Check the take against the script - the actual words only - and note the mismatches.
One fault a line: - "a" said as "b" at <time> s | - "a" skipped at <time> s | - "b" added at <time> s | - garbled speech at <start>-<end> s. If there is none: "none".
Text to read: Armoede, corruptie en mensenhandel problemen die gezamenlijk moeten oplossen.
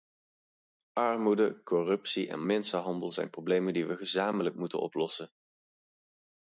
- "zijn" added at 3.1 s
- "we" added at 3.9 s